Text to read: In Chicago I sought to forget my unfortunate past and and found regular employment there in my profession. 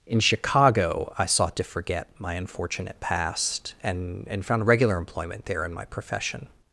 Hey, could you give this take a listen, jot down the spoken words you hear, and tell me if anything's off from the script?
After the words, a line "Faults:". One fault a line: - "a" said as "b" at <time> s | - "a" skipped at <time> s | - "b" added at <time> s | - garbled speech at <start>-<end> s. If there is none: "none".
In Chicago I sought to forget my unfortunate past and and found regular employment there in my profession.
Faults:
none